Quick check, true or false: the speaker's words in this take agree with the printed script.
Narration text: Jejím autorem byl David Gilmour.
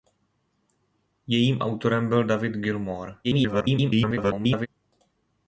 false